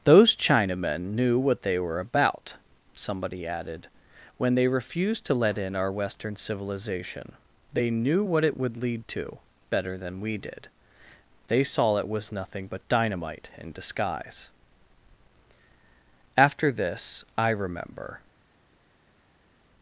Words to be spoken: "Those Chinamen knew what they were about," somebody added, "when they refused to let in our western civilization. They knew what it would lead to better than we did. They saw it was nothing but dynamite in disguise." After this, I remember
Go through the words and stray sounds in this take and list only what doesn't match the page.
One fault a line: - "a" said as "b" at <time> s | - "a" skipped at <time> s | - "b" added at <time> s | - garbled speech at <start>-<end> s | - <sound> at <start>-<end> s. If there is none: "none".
none